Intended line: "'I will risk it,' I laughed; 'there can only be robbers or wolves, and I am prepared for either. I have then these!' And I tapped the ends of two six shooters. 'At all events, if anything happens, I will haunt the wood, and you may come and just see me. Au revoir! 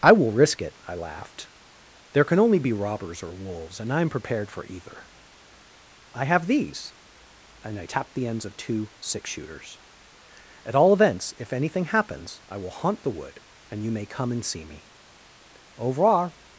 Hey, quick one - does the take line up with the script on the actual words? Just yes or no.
no